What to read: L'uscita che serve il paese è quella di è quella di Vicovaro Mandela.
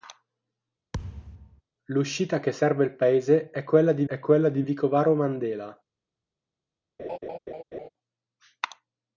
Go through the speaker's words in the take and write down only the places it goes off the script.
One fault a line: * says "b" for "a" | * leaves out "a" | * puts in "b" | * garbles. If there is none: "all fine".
all fine